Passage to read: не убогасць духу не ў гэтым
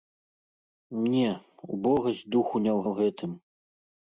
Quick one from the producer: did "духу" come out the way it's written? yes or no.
yes